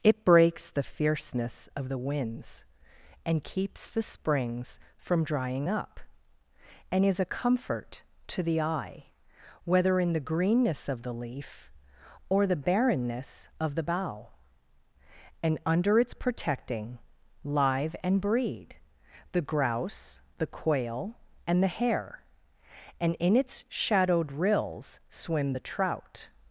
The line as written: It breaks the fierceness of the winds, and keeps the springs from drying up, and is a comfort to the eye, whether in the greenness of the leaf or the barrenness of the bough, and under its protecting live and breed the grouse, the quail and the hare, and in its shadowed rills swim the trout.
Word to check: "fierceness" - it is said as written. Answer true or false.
true